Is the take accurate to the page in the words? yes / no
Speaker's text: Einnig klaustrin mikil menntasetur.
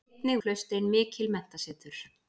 yes